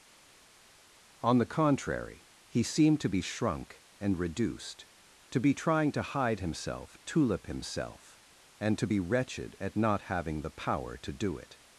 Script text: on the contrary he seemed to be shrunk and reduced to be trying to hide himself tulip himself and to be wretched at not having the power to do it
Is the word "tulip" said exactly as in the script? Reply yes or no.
yes